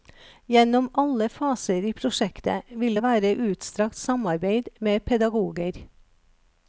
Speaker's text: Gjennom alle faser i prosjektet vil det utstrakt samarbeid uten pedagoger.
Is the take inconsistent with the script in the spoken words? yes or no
yes